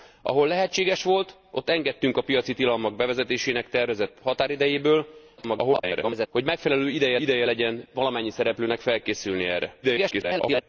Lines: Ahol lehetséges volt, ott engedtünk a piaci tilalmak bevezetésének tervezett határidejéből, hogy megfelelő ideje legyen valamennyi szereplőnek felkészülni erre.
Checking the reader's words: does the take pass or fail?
fail